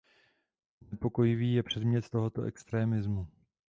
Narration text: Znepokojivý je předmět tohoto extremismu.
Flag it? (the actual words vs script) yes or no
no